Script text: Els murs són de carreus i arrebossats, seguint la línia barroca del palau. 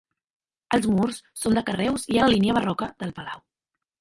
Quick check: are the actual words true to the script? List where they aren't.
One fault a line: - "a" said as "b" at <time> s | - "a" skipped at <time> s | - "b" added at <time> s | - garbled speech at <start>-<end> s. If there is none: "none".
- "arrebossats seguint" skipped at 2.2 s